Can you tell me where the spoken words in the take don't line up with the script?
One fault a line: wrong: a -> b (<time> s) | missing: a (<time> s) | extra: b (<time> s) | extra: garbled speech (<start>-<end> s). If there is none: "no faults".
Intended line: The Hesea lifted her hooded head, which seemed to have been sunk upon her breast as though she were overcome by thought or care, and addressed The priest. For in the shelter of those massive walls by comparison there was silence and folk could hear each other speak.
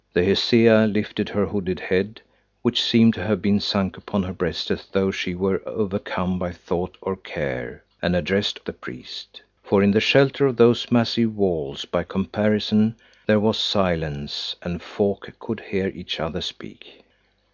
no faults